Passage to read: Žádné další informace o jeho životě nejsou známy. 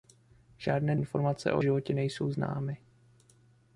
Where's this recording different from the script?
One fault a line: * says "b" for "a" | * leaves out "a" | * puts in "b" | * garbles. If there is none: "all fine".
* leaves out "další"
* leaves out "jeho"